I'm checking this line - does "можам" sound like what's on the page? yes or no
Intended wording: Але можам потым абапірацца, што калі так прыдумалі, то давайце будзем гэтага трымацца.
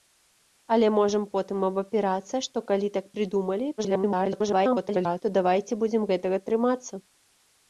yes